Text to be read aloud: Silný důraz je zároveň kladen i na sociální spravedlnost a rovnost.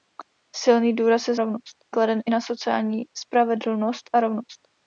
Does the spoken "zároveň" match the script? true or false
false